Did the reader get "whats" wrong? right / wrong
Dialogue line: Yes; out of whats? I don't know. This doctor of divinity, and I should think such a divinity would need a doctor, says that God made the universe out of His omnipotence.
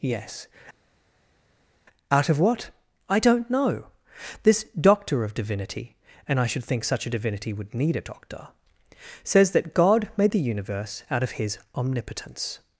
wrong